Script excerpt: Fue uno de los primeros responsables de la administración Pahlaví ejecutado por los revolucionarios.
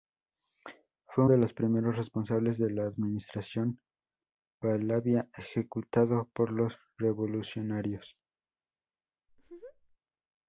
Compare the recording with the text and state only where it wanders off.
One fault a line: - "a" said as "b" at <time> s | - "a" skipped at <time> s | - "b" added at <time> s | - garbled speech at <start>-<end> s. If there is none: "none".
- "uno" skipped at 1.2 s